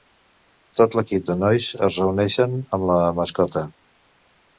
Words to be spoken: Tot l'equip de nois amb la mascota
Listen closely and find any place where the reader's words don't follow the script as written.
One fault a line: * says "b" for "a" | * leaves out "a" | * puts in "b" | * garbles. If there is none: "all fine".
* puts in "es reuneixen"